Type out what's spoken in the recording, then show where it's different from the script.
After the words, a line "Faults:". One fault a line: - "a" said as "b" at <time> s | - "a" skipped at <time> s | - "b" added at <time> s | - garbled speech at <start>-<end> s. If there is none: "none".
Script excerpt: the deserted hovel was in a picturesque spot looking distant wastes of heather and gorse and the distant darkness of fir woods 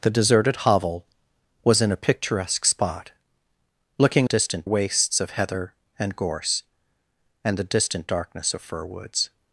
the deserted hovel was in a picturesque spot looking distant wastes of heather and gorse and the distant darkness of fir woods
Faults:
none